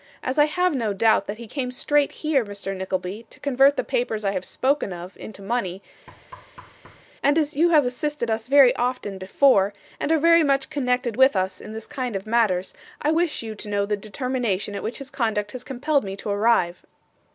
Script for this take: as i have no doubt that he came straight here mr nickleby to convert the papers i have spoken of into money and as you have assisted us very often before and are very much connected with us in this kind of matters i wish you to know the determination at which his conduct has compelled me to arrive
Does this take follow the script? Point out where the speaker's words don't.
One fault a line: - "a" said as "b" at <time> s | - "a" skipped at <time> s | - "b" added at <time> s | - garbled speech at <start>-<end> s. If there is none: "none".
none